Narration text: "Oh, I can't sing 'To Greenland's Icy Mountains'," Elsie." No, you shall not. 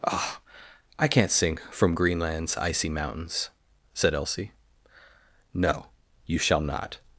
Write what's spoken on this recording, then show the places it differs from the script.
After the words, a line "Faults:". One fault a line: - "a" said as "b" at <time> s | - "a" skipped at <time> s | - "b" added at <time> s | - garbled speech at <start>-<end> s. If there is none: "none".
"Oh, I can't sing 'From Greenland's Icy Mountains'," said Elsie." No, you shall not.
Faults:
- "To" said as "From" at 1.7 s
- "said" added at 3.9 s